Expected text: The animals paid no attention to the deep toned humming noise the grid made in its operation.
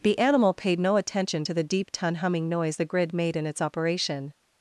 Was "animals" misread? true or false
true